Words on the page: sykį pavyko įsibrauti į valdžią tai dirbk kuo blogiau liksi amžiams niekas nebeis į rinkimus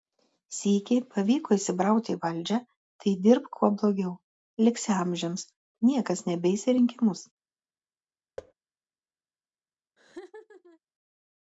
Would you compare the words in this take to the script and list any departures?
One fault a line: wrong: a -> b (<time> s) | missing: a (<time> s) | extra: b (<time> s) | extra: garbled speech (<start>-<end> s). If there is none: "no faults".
no faults